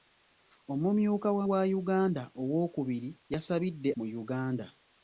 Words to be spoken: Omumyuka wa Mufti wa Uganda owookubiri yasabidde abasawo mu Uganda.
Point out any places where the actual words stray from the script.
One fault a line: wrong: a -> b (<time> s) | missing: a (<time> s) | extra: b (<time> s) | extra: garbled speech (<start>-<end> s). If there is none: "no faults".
missing: Mufti (1.4 s)
missing: abasawo (3.9 s)